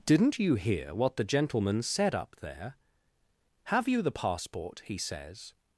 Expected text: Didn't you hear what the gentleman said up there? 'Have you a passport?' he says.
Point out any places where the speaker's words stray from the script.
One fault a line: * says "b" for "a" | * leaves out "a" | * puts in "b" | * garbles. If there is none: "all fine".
* says "the" for "a"